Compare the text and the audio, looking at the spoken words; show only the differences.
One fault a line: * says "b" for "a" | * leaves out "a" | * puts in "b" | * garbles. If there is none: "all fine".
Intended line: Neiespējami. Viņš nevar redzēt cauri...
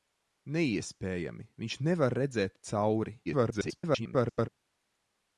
* garbles